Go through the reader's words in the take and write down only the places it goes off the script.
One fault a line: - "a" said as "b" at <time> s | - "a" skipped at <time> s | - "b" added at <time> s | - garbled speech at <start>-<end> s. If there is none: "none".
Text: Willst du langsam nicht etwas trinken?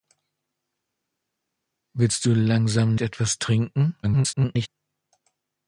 - "nicht" skipped at 3.0 s
- garbled speech at 4.0-4.7 s